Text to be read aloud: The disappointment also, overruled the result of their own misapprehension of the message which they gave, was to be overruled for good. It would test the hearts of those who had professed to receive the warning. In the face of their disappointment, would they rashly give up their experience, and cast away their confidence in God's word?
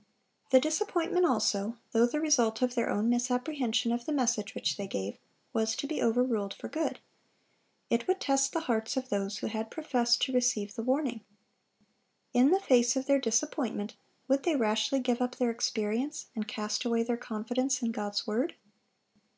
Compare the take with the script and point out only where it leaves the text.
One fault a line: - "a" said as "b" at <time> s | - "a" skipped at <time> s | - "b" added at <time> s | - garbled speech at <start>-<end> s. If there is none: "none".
- "overruled" said as "though" at 1.9 s